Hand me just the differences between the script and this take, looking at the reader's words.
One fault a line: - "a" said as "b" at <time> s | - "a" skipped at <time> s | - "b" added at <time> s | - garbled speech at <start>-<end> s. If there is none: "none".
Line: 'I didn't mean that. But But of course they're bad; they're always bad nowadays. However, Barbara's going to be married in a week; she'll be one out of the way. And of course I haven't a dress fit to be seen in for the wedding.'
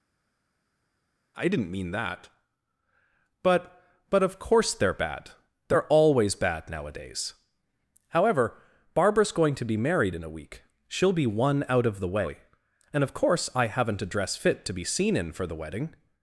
none